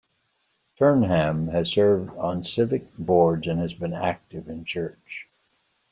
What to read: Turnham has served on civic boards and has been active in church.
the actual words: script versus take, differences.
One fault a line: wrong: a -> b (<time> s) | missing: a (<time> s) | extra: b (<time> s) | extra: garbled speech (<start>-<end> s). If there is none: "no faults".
no faults